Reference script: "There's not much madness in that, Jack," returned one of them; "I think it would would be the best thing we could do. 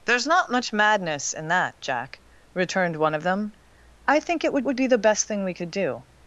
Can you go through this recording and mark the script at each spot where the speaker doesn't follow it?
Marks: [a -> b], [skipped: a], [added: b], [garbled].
"There's not much madness in that, Jack," returned one of them; "I think it would would be the best thing we could do.